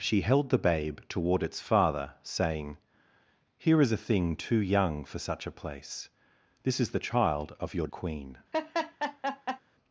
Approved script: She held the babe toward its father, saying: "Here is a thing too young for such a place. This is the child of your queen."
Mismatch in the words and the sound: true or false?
true